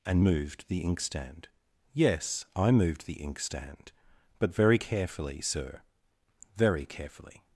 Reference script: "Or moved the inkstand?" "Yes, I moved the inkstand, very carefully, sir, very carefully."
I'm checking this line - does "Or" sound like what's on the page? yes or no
no